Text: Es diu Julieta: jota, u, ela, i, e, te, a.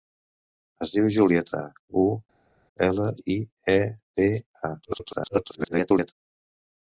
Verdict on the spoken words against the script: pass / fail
fail